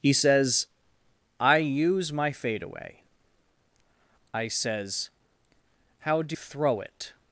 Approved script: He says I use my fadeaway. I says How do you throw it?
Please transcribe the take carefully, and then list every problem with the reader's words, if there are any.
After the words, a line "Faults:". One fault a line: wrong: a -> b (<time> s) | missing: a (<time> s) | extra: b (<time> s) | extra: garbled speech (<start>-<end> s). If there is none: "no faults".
He says I use my fadeaway. I says How do throw it?
Faults:
missing: you (6.4 s)